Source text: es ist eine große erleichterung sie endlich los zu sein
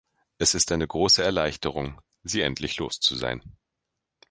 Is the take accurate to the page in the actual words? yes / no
yes